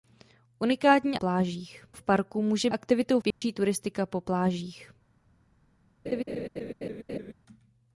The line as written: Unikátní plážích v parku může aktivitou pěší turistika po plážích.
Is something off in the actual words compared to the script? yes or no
no